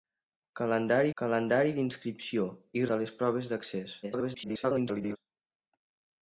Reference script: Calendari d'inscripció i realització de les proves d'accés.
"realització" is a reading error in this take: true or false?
true